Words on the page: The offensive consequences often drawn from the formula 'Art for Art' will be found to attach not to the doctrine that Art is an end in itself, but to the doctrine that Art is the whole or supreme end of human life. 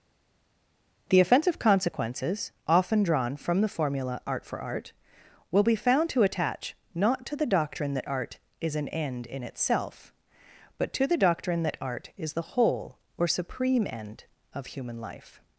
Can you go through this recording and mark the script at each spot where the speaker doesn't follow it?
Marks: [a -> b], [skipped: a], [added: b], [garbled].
The offensive consequences often drawn from the formula 'Art for Art' will be found to attach not to the doctrine that Art is an end in itself, but to the doctrine that Art is the whole or supreme end of human life.